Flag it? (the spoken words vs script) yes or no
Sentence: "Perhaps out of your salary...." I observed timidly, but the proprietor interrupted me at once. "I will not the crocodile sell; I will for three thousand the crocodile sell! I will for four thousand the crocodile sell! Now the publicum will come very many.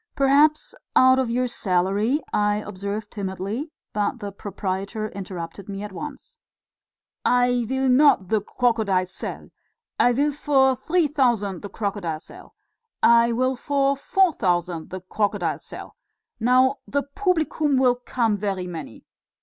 no